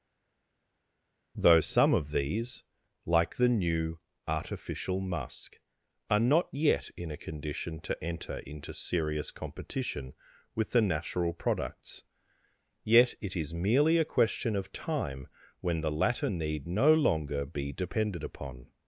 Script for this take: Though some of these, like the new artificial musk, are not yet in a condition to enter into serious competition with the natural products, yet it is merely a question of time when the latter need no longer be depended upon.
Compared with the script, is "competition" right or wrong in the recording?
right